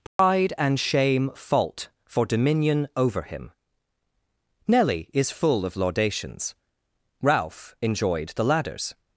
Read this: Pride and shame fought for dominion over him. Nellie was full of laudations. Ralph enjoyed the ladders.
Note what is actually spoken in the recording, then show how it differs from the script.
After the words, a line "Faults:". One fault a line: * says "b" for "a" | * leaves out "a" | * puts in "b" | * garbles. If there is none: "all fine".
Pride and shame fault for dominion over him. Nellie is full of laudations. Ralph enjoyed the ladders.
Faults:
* says "fault" for "fought"
* says "is" for "was"